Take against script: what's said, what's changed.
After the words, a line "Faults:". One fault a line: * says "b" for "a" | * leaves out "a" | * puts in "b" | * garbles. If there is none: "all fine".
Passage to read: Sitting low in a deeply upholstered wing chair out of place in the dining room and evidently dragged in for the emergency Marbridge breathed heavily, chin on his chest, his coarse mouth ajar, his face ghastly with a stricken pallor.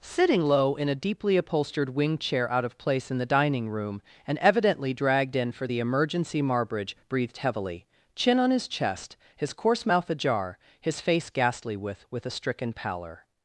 Sitting low in a deeply upholstered wing chair out of place in the dining room and evidently dragged in for the emergency Marbridge breathed heavily, chin on his chest, his coarse mouth ajar, his face ghastly with with a stricken pallor.
Faults:
* puts in "with"